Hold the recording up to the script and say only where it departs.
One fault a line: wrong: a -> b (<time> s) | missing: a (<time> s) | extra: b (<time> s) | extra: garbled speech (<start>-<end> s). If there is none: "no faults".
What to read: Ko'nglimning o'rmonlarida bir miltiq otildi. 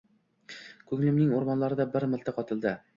no faults